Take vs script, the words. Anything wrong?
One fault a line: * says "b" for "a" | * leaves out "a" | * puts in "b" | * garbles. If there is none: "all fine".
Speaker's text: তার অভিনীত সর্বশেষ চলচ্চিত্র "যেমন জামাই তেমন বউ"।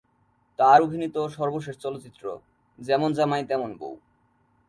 all fine